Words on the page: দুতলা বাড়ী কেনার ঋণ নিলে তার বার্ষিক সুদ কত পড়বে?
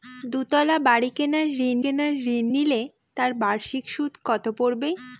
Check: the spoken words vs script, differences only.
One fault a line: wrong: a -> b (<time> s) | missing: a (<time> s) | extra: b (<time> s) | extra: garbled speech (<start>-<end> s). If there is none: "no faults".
extra: কেনার ঋণ (1.8 s)